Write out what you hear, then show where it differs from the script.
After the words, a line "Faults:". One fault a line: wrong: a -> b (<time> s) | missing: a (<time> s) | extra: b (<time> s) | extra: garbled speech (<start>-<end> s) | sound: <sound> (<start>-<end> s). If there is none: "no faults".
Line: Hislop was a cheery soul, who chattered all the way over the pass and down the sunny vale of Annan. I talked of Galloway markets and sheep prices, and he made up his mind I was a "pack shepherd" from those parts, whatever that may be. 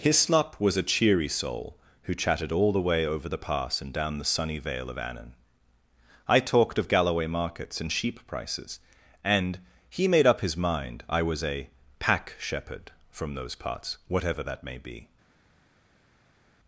Hislop was a cheery soul, who chatted all the way over the pass and down the sunny vale of Annan. I talked of Galloway markets and sheep prices, and he made up his mind I was a "pack shepherd" from those parts, whatever that may be.
Faults:
wrong: chattered -> chatted (2.1 s)